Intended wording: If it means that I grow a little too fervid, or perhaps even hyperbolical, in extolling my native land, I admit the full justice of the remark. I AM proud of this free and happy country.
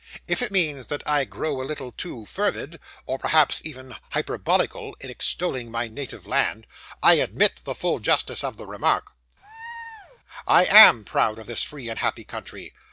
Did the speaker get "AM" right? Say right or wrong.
right